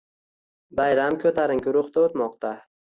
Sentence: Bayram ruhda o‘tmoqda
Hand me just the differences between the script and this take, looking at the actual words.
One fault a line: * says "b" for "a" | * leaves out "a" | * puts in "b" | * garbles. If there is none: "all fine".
* puts in "ko‘tarinki"